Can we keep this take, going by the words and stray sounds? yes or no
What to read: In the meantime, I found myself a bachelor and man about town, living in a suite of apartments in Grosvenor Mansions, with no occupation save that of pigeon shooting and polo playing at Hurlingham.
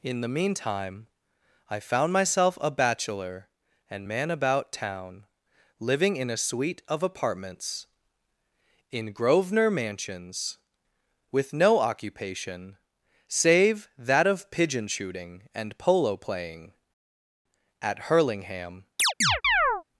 no